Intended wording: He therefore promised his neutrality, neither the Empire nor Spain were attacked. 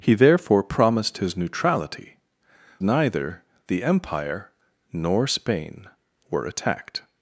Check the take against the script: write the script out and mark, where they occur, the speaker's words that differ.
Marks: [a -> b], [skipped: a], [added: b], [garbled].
He therefore promised his neutrality, neither the Empire nor Spain were attacked.